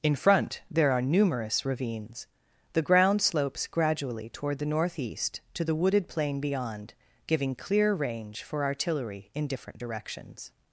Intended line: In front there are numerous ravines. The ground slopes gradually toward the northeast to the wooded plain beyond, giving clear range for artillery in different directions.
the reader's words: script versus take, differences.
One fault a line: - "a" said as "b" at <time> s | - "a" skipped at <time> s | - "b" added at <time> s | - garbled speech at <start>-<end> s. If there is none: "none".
none